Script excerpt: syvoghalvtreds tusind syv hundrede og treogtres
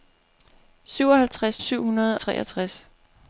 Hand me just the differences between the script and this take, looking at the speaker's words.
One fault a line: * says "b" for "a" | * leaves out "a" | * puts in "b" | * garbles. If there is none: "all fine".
* leaves out "tusind"
* leaves out "og"